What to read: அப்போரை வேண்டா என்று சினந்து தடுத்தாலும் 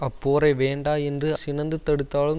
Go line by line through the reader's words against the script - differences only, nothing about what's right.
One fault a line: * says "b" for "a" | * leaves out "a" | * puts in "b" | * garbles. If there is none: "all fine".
all fine